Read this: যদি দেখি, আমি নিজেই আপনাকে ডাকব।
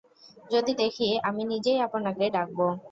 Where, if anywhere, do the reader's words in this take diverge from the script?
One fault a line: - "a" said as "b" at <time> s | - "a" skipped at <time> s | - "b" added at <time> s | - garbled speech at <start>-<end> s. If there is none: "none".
none